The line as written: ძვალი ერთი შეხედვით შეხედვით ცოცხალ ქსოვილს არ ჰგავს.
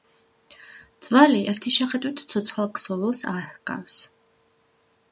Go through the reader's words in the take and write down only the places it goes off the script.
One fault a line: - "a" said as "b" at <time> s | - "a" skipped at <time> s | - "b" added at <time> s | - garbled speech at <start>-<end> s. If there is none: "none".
- "შეხედვით" skipped at 2.2 s